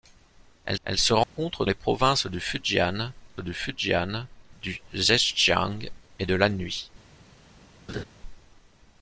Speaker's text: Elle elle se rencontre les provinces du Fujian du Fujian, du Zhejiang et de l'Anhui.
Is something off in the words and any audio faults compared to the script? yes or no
yes